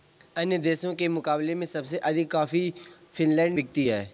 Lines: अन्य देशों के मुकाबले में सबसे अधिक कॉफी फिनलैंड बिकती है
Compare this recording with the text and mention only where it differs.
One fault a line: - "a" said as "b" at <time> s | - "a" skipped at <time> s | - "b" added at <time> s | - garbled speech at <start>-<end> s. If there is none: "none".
none